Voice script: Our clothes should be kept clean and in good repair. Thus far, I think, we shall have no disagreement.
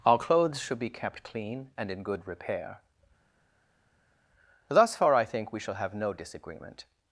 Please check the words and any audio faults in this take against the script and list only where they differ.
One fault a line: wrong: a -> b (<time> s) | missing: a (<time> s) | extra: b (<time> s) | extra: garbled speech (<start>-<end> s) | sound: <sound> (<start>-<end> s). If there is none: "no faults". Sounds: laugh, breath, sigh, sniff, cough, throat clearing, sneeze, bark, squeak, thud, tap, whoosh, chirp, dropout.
no faults